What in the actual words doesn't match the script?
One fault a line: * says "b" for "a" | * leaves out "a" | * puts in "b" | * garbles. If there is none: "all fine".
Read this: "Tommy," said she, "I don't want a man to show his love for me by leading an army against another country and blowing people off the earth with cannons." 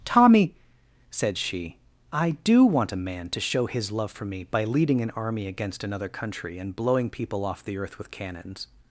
* says "do" for "don't"